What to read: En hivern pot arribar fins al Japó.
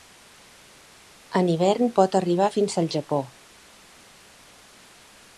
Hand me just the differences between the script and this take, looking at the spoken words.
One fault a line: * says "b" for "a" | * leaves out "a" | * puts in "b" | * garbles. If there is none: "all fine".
all fine